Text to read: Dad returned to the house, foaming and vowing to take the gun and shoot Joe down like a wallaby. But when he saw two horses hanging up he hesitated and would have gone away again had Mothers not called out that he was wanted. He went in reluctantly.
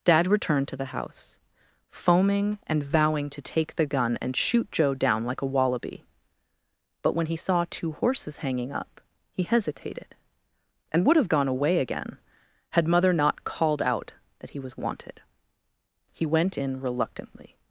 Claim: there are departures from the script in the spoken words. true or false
true